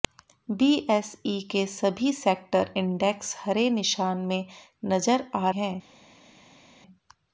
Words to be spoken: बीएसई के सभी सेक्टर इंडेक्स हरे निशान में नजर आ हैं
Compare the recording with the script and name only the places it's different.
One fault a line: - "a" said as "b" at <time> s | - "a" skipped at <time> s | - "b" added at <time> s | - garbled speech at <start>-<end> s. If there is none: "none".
none